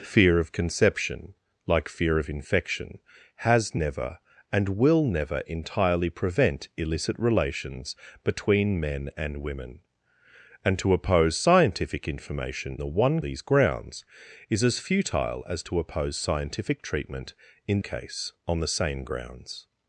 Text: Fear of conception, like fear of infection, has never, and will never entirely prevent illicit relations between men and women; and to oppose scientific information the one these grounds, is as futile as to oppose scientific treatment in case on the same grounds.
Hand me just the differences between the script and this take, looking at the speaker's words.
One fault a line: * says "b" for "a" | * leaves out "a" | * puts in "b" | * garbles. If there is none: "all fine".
all fine